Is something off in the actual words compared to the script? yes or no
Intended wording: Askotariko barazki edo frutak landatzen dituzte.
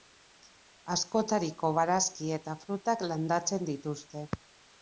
yes